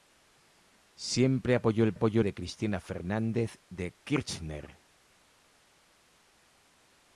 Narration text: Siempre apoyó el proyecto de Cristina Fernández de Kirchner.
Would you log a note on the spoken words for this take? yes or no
yes